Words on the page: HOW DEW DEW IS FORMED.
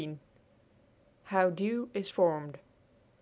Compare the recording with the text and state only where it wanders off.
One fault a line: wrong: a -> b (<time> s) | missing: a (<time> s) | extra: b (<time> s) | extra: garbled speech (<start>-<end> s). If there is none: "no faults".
missing: DEW (1.9 s)